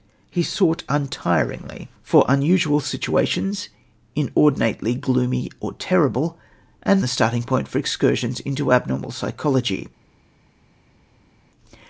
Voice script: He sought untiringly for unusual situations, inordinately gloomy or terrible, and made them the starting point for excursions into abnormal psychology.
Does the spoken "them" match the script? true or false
false